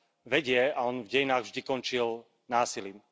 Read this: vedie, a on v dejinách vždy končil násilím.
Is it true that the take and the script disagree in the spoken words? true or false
false